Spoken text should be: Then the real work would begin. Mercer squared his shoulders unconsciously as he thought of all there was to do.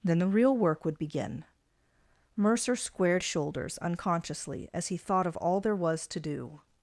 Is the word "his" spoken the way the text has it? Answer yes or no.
no